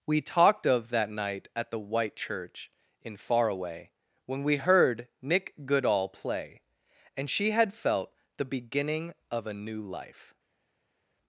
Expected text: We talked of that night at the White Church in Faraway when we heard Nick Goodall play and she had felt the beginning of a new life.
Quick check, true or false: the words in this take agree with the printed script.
true